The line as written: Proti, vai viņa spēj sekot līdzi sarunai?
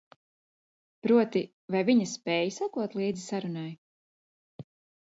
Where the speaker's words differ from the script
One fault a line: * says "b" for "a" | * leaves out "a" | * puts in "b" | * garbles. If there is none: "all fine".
all fine